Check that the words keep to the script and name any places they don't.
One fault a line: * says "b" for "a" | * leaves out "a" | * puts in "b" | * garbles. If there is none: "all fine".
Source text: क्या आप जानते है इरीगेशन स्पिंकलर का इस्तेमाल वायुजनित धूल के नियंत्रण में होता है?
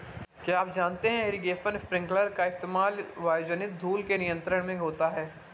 all fine